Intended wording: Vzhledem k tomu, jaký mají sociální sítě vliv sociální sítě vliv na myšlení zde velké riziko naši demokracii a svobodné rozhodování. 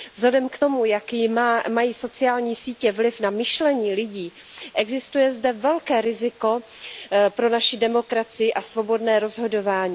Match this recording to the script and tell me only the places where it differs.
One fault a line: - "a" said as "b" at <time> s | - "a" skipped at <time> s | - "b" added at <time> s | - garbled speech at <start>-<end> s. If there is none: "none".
- "sociální sítě vliv na myšlení" said as "na myšlení lidí existuje" at 3.2 s
- "pro" added at 7.3 s